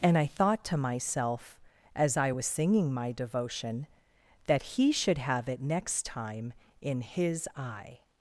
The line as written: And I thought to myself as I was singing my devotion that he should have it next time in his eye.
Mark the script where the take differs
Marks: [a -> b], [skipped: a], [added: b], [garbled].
And I thought to myself as I was singing my devotion that he should have it next time in his eye.